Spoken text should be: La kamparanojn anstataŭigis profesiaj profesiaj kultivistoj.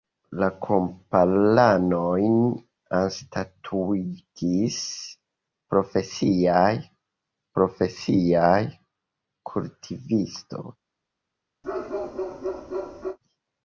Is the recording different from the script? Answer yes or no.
no